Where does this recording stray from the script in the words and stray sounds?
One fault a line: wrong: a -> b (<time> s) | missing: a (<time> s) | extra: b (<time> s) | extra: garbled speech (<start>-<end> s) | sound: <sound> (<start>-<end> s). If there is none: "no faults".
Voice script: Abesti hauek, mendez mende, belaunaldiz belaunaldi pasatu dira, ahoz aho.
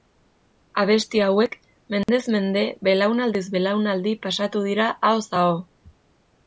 sound: dropout (2.0-2.1 s)